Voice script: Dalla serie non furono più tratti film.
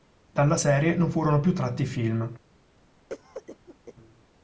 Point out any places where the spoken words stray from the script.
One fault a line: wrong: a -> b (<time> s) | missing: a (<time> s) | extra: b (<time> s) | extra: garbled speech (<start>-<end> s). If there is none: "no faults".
no faults